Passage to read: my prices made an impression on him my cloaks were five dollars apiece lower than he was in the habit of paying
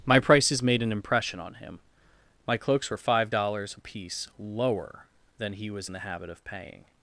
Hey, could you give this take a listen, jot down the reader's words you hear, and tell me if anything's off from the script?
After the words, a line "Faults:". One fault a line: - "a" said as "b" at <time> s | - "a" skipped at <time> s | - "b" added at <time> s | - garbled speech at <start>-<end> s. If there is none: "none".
my prices made an impression on him my cloaks were five dollars apiece lower than he was in the habit of paying
Faults:
none